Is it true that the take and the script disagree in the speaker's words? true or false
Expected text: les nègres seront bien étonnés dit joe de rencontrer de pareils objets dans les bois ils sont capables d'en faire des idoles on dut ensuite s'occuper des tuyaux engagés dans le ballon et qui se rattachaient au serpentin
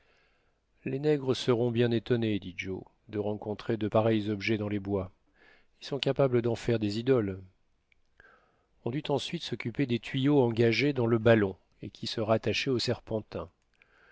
false